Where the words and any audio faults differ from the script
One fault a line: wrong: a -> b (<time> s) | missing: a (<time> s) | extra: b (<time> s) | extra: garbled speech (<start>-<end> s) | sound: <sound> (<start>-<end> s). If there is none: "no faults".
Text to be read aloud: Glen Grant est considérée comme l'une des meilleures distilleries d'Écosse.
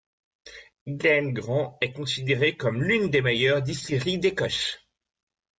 no faults